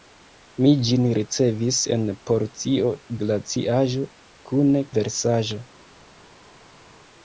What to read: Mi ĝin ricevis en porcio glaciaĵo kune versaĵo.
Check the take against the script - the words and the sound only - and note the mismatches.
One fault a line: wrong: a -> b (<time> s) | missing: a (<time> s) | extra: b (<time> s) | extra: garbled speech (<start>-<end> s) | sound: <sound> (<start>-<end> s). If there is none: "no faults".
no faults